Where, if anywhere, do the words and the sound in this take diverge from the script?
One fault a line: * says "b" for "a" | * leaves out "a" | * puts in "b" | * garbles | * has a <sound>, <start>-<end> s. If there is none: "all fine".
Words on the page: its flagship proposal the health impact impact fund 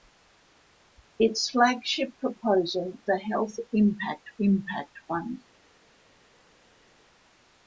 all fine